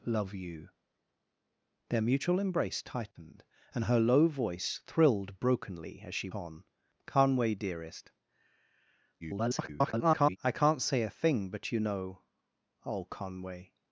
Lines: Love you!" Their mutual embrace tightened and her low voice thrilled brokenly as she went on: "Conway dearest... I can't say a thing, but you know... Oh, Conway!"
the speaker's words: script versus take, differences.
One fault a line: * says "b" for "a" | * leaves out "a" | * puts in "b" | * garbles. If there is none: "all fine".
* leaves out "went"
* garbles